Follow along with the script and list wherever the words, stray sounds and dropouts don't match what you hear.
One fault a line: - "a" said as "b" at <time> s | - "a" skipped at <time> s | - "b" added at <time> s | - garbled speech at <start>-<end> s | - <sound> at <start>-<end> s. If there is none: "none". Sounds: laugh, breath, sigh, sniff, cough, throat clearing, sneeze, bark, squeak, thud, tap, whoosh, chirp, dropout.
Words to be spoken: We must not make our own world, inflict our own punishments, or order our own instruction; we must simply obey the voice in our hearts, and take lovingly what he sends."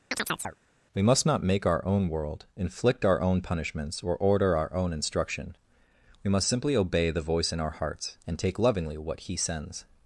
- chirp at 0.1-0.6 s